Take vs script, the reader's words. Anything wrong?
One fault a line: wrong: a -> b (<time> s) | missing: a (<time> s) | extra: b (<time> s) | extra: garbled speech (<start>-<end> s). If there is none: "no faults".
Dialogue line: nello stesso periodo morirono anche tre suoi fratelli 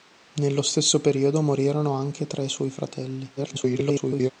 extra: garbled speech (3.4-4.3 s)